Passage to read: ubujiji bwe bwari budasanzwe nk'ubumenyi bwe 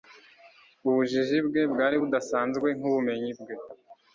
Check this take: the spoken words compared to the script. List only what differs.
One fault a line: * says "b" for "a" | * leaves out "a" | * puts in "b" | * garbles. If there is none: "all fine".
all fine